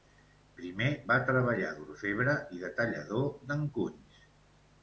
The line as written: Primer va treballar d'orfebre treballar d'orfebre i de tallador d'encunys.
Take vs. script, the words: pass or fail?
fail